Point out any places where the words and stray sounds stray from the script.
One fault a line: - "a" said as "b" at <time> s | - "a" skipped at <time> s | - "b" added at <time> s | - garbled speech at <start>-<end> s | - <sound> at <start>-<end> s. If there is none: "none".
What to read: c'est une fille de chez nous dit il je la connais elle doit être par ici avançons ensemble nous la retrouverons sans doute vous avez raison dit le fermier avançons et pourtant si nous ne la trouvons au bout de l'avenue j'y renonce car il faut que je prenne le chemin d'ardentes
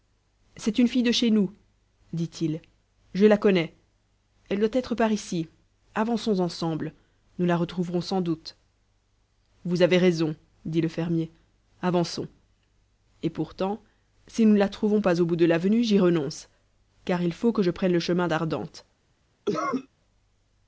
- "pas" added at 15.0 s
- cough at 19.4-19.9 s